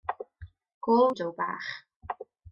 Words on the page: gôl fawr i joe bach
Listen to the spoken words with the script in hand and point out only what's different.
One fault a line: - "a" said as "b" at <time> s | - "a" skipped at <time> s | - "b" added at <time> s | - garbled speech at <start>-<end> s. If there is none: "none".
- "fawr" skipped at 1.1 s